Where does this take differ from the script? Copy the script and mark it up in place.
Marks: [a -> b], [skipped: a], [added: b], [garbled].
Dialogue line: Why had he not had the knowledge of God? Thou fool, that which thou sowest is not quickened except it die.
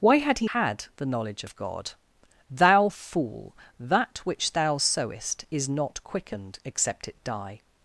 Why had he [skipped: not] had the knowledge of God? Thou fool, that which thou sowest is not quickened except it die.